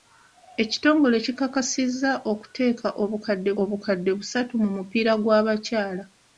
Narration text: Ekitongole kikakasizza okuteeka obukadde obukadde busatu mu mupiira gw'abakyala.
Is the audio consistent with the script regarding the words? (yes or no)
yes